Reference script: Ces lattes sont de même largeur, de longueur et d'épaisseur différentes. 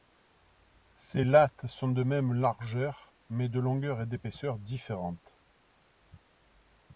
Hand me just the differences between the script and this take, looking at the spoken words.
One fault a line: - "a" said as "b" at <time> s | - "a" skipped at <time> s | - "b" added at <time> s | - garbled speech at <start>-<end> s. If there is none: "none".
- "mais" added at 3.3 s